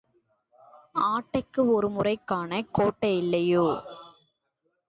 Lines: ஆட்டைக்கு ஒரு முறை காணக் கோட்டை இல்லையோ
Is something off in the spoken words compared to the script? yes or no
no